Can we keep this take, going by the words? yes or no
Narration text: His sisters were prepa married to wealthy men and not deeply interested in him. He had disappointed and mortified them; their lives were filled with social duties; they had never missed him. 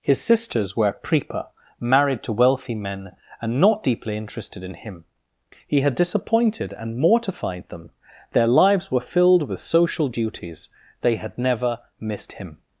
yes